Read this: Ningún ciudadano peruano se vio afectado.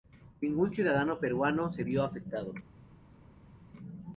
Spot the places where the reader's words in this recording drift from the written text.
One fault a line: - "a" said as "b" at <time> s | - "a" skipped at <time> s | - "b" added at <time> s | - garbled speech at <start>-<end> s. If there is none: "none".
none